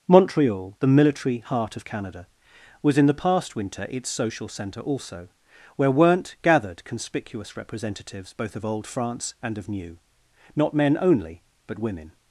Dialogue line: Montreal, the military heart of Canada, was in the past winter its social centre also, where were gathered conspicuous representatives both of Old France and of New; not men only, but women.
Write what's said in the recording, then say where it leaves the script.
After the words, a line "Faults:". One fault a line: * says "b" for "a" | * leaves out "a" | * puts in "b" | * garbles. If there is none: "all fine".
Montreal, the military heart of Canada, was in the past winter its social centre also, where weren't gathered conspicuous representatives both of Old France and of New; not men only, but women.
Faults:
* says "weren't" for "were"